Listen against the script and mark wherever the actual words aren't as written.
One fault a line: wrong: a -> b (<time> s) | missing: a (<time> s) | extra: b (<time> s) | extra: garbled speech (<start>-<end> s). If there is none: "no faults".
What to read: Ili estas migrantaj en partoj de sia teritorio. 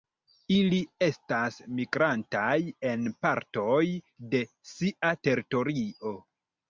no faults